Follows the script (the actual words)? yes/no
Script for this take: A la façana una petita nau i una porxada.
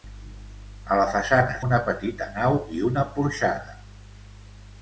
yes